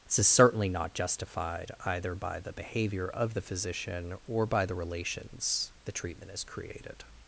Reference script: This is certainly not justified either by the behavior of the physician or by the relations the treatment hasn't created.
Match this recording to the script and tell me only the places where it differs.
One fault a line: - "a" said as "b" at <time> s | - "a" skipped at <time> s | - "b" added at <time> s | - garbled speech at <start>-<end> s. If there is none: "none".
- "hasn't" said as "has" at 6.3 s